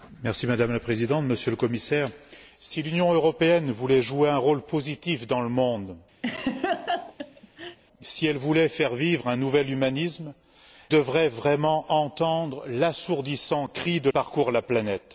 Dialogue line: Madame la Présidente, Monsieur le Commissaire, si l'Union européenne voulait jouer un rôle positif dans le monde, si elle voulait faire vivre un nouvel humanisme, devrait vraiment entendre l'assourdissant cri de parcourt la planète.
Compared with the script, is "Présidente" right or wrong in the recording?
right